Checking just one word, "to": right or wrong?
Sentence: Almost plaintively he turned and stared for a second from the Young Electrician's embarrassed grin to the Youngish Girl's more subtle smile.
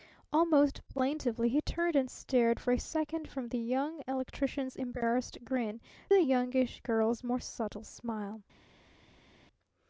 wrong